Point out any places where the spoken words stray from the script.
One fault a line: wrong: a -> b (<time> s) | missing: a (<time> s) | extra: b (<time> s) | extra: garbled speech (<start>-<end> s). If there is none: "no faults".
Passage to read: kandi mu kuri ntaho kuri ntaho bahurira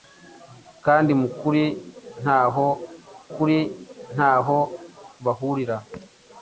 no faults